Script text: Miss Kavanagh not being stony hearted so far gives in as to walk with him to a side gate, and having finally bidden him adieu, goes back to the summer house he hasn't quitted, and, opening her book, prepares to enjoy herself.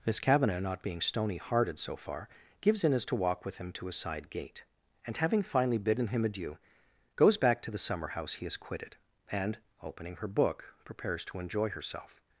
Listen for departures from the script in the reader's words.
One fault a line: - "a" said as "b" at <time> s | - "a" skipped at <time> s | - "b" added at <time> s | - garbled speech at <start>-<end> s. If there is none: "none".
- "hasn't" said as "has" at 8.4 s